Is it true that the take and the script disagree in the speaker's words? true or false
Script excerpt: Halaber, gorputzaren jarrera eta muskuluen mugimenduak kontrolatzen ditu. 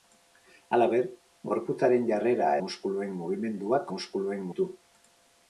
true